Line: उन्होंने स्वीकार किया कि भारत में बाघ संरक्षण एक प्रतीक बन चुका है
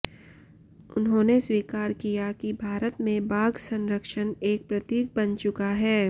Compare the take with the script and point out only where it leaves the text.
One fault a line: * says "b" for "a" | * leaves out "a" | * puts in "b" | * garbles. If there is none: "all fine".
all fine